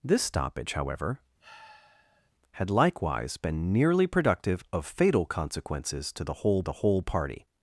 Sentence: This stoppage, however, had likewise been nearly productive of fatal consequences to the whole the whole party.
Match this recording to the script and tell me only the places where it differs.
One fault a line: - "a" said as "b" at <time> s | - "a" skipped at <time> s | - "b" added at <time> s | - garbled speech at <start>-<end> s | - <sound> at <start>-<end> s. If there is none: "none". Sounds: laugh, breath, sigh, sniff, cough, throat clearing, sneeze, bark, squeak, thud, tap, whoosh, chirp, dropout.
- sigh at 1.4-2.3 s